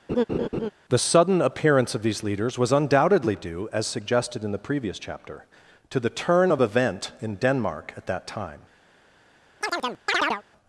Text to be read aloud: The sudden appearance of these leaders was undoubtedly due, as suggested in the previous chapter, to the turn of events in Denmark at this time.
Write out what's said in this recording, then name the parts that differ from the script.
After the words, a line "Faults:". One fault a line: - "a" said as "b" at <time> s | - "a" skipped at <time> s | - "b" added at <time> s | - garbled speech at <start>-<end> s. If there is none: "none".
The sudden appearance of these leaders was undoubtedly due, as suggested in the previous chapter, to the turn of event in Denmark at that time.
Faults:
- "events" said as "event" at 6.6 s
- "this" said as "that" at 8.1 s